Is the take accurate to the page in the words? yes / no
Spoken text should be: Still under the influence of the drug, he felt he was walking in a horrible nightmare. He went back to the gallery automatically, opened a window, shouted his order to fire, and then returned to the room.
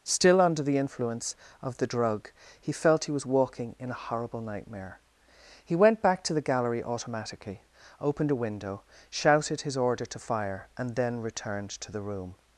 yes